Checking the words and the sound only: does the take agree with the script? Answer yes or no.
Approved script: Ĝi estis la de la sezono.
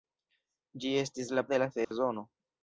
no